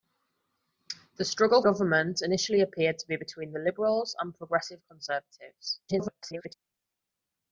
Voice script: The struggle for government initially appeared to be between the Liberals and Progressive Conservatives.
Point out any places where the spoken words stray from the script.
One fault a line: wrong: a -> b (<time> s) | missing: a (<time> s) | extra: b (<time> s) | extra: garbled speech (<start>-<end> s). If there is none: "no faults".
missing: for (1.6 s)
extra: garbled speech (5.9-6.5 s)